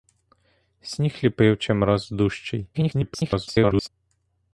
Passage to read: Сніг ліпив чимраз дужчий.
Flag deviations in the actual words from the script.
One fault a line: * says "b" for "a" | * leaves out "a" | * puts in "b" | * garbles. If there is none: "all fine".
* garbles